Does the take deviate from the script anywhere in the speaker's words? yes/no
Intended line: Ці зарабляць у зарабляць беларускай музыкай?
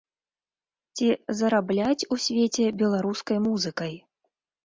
yes